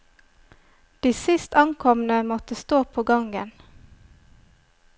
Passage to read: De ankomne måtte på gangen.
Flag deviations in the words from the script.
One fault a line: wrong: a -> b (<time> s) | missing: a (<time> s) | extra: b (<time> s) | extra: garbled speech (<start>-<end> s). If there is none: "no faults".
extra: sist (1.1 s)
extra: stå (2.5 s)